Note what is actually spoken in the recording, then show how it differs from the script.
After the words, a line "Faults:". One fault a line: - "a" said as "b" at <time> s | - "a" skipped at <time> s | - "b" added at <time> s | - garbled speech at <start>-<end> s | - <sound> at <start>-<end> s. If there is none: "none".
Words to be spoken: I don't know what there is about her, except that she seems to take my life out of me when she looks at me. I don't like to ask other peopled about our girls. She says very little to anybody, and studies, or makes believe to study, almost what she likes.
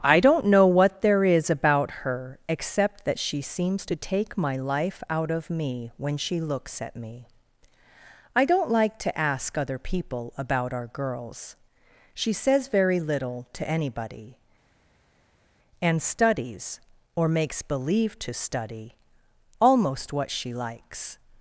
I don't know what there is about her, except that she seems to take my life out of me when she looks at me. I don't like to ask other people about our girls. She says very little to anybody, and studies, or makes believe to study, almost what she likes.
Faults:
- "peopled" said as "people" at 9.8 s